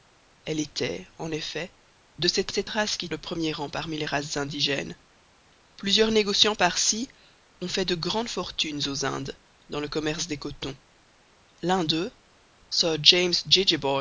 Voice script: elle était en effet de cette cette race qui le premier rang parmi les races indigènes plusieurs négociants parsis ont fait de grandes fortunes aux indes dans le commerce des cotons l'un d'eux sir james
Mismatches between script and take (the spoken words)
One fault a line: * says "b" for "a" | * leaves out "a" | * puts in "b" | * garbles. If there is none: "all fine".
all fine